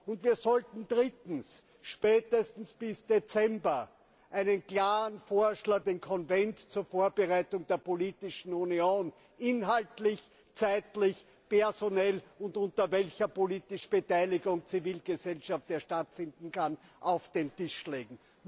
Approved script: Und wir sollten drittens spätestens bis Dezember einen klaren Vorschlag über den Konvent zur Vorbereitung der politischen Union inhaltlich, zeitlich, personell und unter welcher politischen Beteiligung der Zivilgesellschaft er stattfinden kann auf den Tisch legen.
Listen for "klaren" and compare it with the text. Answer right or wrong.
right